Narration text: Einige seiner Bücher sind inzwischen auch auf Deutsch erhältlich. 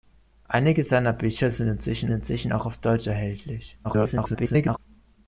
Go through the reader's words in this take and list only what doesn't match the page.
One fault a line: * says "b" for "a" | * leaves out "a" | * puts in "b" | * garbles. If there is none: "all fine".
* puts in "inzwischen"
* garbles